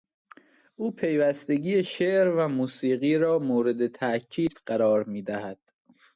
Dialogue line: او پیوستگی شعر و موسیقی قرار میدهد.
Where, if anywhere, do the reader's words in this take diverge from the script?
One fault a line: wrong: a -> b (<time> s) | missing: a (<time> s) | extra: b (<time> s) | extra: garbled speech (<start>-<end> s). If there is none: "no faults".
extra: را مورد تاکید (3.2 s)